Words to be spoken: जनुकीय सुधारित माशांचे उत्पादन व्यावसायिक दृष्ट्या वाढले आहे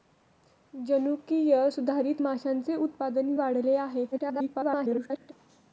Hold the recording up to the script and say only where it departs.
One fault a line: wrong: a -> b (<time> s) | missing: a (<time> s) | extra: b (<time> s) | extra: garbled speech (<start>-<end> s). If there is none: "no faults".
missing: व्यावसायिक दृष्ट्या (3.3 s)
extra: garbled speech (4.1-5.3 s)